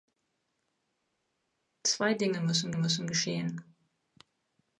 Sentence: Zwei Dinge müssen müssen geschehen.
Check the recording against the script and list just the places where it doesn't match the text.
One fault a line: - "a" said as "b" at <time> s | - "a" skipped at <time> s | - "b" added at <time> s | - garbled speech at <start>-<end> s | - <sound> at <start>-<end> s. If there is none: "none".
none